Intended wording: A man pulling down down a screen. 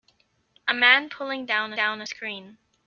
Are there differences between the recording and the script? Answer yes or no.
no